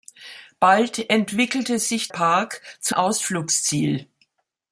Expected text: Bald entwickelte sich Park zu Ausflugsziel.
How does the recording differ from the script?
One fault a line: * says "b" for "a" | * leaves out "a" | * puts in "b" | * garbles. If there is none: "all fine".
all fine